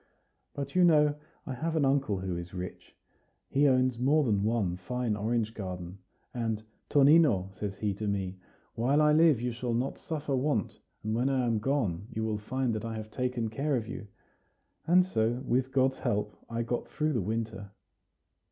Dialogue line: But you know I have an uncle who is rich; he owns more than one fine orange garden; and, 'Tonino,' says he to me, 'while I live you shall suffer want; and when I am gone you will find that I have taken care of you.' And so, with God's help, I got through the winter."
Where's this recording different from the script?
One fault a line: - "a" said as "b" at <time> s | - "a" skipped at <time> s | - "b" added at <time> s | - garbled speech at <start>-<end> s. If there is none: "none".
- "not" added at 9.8 s